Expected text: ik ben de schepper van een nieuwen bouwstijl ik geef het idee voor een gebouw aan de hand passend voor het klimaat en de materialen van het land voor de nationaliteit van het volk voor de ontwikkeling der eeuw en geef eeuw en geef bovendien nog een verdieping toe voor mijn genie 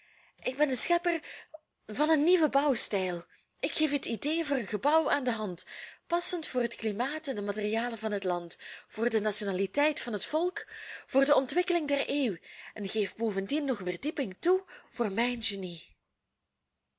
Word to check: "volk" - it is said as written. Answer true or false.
true